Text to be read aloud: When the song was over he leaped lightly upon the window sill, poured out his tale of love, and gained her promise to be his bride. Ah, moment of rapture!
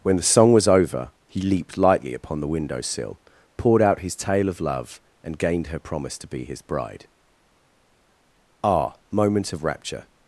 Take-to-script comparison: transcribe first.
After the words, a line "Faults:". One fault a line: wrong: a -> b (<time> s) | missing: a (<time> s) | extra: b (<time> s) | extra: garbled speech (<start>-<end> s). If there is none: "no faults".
When the song was over he leaped lightly upon the window sill, poured out his tale of love, and gained her promise to be his bride. Ah, moment of rapture!
Faults:
no faults